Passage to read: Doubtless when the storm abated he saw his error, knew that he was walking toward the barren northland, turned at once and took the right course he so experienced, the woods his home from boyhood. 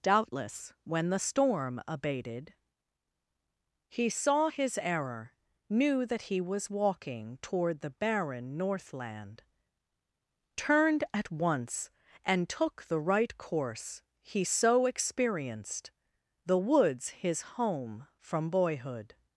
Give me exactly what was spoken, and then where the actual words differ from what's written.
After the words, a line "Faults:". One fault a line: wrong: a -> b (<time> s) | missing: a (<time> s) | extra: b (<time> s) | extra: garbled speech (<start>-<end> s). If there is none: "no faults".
Doubtless when the storm abated he saw his error, knew that he was walking toward the barren northland, turned at once and took the right course he so experienced, the woods his home from boyhood.
Faults:
no faults